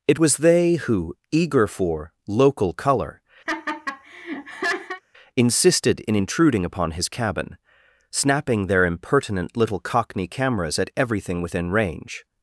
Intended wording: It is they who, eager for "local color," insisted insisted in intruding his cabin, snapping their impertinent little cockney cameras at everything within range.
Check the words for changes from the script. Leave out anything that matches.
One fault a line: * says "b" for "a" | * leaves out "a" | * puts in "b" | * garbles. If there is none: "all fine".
* says "was" for "is"
* leaves out "insisted"
* puts in "upon"